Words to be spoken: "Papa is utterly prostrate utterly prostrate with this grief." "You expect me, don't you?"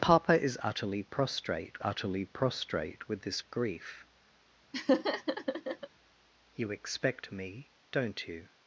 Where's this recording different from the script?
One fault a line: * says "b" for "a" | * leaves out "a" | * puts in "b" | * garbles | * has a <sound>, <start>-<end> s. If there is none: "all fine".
* has a laugh, 4.7-5.9 s